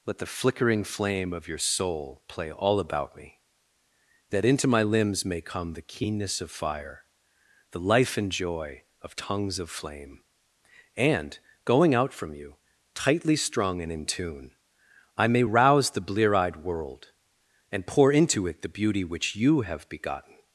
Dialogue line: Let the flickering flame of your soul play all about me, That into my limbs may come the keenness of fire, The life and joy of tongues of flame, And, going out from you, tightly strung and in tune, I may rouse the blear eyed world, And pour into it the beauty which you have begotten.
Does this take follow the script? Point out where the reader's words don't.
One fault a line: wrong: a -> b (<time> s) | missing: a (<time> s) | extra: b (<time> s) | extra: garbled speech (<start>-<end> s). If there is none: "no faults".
no faults